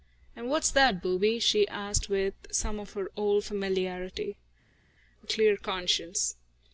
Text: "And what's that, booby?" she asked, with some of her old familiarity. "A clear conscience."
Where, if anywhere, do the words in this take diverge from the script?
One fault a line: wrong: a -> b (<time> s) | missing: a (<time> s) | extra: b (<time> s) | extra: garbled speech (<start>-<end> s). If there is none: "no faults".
no faults